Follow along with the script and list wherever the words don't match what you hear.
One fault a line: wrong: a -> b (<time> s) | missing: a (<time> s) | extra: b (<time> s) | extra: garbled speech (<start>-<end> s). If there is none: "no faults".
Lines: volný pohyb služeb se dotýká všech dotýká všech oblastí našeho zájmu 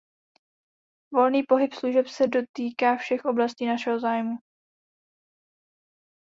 missing: dotýká všech (3.3 s)